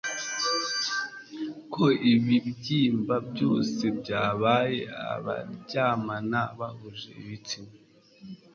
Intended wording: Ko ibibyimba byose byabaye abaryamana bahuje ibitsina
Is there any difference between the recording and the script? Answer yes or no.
no